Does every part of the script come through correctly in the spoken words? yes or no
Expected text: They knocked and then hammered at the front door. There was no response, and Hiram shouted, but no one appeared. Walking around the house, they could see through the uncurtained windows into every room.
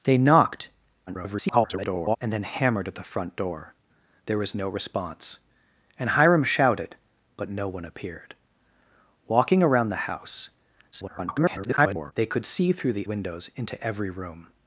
no